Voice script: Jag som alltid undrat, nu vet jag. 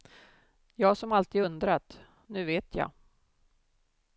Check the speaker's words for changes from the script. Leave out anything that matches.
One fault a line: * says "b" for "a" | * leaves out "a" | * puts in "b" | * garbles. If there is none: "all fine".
all fine